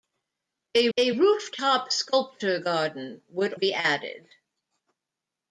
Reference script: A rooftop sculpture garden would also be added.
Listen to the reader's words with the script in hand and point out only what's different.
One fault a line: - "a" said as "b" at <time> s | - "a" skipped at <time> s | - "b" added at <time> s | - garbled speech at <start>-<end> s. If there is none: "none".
- "a" added at 1.0 s
- "also" skipped at 3.5 s